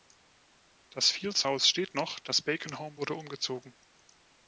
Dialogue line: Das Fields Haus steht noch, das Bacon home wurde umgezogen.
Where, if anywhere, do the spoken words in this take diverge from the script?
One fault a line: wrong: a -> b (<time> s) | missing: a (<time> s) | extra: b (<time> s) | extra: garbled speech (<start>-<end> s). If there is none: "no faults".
no faults